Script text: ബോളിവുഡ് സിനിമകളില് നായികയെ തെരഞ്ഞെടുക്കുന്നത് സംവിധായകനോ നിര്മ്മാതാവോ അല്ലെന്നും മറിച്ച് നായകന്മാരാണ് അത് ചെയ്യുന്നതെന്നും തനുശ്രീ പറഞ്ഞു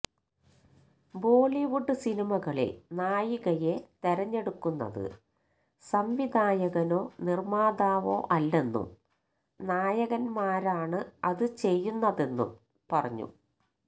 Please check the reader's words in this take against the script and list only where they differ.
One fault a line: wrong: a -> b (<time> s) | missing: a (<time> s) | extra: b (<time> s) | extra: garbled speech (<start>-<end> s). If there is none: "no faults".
missing: മറിച്ച് (8.9 s)
missing: തനുശ്രീ (12.5 s)